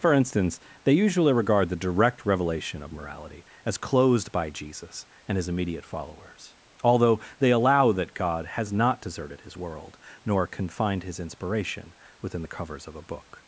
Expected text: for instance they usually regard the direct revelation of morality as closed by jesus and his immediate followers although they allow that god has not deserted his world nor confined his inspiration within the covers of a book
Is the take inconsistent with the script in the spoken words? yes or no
no